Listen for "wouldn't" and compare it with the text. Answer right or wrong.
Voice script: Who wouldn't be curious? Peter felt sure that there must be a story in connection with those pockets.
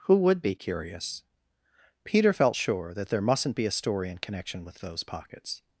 wrong